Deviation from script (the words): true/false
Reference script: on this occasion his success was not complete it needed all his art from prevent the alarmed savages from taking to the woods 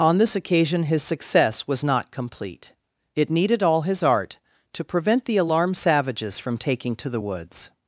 true